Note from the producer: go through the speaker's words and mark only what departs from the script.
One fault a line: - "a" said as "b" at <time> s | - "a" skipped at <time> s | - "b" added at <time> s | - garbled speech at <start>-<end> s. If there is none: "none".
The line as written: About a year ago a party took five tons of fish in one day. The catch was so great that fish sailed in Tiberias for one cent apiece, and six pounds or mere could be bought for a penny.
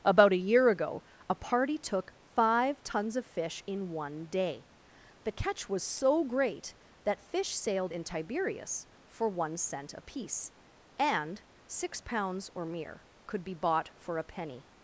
none